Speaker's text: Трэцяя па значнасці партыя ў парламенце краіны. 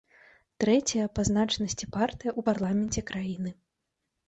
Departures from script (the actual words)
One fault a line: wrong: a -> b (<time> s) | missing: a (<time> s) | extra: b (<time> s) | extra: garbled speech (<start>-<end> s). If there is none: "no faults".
no faults